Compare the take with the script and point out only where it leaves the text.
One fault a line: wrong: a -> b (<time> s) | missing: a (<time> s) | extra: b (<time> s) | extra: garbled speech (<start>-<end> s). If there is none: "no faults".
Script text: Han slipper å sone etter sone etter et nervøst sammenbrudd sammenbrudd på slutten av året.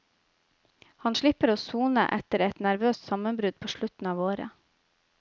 missing: sone etter (2.4 s)
missing: sammenbrudd (3.6 s)